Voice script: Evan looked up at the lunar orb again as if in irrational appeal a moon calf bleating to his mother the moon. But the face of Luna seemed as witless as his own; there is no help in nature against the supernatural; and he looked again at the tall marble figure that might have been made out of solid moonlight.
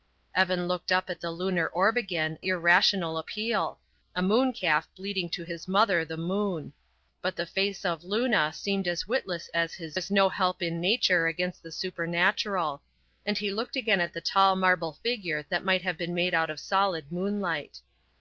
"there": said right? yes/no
no